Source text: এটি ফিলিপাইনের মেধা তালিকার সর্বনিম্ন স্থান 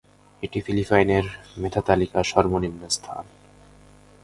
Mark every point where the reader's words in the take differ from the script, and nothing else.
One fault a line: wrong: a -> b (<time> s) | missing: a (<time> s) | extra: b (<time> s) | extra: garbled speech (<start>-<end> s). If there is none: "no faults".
no faults